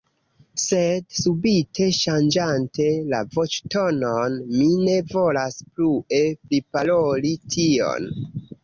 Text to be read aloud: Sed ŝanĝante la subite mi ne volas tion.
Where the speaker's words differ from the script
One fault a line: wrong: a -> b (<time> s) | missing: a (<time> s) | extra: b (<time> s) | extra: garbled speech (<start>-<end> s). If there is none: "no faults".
extra: subite (1.2 s)
wrong: subite -> voĉtonon (3.4 s)
extra: plue priparoli (5.7 s)